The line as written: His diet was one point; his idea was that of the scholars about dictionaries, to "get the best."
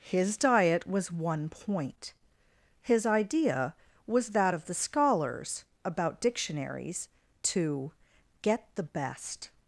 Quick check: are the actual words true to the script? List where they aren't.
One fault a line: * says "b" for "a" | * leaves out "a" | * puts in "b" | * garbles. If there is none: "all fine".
all fine